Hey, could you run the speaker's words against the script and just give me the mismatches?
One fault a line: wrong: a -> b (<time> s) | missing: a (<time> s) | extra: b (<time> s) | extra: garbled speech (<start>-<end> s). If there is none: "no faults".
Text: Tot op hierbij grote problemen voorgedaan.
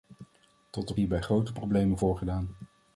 no faults